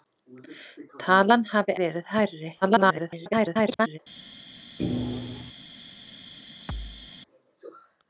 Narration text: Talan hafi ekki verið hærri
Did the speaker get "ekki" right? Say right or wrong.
wrong